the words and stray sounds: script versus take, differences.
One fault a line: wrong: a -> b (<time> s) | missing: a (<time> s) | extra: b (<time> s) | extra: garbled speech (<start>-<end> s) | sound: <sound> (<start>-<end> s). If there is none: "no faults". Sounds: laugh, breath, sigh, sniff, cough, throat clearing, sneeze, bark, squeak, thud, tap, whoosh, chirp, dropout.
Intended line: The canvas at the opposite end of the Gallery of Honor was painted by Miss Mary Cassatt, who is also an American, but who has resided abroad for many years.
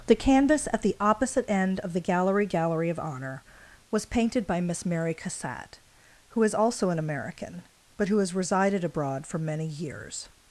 extra: Gallery (2.5 s)